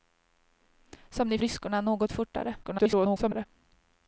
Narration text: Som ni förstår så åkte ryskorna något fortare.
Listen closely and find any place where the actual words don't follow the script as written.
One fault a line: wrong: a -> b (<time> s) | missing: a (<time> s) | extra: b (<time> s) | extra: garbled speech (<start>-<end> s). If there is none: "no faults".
missing: förstår så åkte (1.4 s)
extra: garbled speech (2.6-3.5 s)